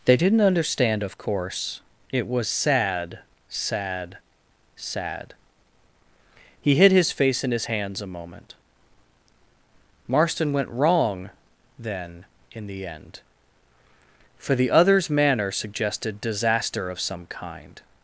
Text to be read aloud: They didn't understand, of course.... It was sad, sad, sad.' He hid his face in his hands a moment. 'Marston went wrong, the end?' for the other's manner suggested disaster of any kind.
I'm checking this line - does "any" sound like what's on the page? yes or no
no